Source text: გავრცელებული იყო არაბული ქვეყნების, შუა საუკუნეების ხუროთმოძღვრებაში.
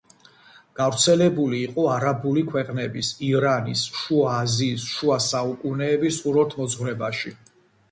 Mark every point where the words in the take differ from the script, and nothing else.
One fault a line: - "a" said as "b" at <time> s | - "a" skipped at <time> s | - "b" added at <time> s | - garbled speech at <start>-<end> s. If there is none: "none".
- "ირანის შუა აზიის" added at 3.3 s